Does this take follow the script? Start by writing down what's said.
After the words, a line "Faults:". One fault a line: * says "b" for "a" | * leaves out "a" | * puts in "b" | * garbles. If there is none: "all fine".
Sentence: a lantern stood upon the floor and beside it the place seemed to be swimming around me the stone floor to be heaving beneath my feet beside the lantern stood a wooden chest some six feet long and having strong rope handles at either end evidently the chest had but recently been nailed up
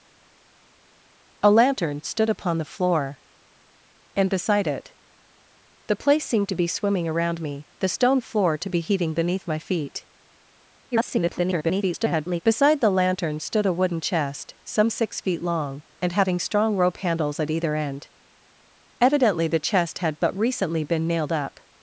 a lantern stood upon the floor and beside it the place seemed to be swimming around me the stone floor to be heaving beneath my feet [garbled] beside the lantern stood a wooden chest some six feet long and having strong rope handles at either end evidently the chest had but recently been nailed up
Faults:
* garbles